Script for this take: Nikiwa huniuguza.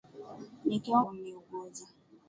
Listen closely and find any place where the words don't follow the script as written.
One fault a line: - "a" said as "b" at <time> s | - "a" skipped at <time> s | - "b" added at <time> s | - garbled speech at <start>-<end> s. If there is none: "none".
none